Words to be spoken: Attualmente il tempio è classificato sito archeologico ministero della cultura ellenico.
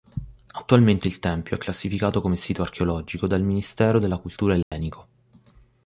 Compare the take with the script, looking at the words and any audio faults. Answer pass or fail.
fail